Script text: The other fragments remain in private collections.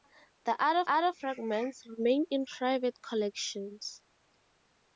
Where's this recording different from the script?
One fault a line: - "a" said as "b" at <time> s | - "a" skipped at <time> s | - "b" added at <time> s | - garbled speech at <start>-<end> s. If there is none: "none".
- "other" added at 0.9 s